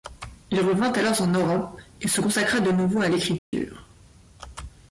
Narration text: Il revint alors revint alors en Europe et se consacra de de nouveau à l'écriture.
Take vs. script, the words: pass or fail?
fail